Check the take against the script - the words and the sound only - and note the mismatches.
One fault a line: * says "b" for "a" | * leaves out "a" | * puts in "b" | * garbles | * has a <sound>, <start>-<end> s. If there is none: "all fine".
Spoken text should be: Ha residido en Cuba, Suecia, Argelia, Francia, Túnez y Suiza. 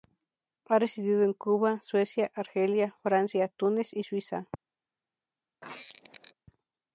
* has a squeak, 5.6-6.3 s